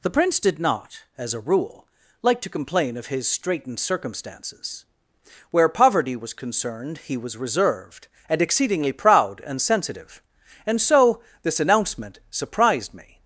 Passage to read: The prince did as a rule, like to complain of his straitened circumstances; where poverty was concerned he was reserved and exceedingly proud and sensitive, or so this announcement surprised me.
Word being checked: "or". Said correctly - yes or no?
no